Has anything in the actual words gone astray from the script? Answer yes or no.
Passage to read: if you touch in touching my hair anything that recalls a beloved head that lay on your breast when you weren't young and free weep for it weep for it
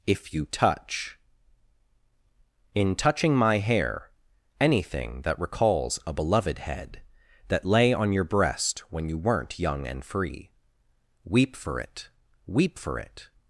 no